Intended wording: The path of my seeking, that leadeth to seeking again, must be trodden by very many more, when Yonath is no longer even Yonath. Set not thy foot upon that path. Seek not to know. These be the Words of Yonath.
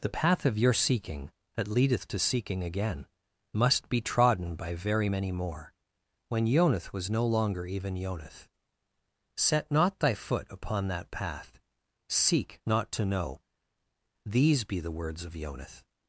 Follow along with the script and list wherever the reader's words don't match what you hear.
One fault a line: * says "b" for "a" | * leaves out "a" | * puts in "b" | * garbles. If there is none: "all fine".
* says "your" for "my"
* says "was" for "is"